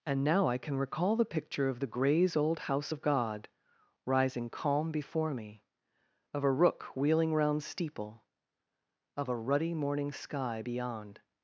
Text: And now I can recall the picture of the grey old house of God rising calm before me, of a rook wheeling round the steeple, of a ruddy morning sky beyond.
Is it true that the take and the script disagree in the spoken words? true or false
true